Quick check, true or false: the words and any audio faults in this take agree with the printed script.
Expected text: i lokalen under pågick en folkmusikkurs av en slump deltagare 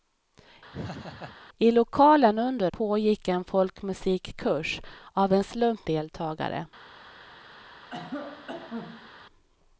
false